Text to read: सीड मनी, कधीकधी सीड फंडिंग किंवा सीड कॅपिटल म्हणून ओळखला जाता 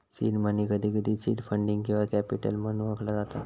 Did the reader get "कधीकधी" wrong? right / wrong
right